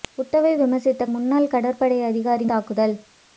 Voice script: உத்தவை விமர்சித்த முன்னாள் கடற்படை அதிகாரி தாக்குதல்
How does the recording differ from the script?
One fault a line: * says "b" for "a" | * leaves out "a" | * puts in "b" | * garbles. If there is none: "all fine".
all fine